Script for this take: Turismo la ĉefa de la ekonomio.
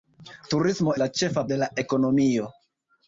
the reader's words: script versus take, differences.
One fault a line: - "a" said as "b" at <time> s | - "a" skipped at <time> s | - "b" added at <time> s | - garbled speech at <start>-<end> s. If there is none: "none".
none